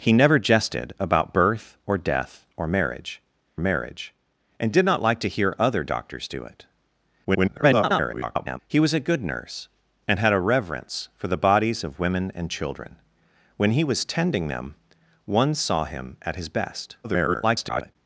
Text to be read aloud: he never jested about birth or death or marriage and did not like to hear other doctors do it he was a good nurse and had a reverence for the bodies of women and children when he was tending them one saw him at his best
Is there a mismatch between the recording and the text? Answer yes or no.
yes